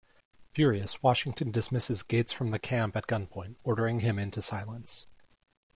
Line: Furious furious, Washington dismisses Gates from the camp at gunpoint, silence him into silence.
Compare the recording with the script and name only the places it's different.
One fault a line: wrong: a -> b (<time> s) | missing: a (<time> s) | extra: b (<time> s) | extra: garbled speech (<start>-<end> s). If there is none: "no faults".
missing: furious (1.0 s)
wrong: silence -> ordering (3.7 s)